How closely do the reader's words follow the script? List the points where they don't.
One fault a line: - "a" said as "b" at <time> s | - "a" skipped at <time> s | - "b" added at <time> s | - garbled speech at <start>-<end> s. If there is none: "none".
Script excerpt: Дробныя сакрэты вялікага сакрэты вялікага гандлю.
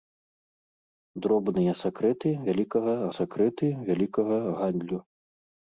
none